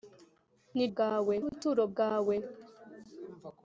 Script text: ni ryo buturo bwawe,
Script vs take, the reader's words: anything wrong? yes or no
yes